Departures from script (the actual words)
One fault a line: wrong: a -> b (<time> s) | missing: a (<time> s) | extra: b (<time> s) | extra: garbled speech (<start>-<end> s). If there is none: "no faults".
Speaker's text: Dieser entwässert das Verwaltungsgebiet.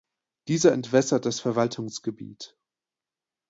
no faults